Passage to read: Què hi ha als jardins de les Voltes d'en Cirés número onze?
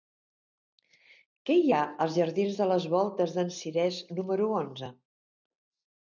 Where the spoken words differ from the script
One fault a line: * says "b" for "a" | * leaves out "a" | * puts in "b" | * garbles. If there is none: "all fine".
all fine